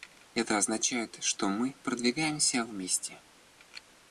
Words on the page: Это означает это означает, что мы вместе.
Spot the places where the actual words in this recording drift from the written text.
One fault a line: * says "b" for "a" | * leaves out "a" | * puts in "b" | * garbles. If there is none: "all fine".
* leaves out "это означает"
* puts in "продвигаемся"